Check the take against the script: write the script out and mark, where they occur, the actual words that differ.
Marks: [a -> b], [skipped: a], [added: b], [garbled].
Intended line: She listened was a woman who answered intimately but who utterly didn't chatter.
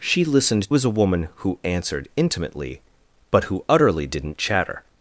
She listened was a woman who answered intimately but who utterly didn't chatter.